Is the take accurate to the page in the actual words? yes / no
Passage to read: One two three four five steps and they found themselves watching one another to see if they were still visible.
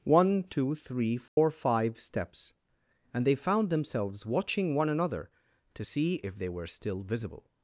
yes